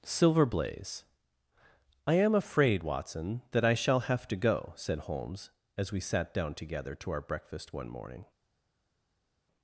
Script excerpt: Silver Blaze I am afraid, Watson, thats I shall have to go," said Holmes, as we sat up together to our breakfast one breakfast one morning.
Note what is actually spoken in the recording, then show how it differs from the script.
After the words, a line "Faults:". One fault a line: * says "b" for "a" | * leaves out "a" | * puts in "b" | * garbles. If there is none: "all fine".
Silver Blaze I am afraid, Watson, that I shall have to go," said Holmes, as we sat down together to our breakfast one morning.
Faults:
* says "that" for "thats"
* says "down" for "up"
* leaves out "breakfast one"